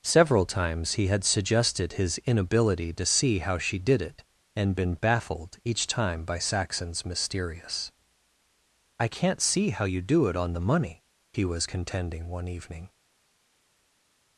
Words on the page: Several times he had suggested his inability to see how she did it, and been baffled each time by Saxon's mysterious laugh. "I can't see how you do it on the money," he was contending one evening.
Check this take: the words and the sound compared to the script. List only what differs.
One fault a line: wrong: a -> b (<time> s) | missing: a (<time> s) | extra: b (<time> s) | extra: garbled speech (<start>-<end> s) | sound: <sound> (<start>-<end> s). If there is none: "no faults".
missing: laugh (7.9 s)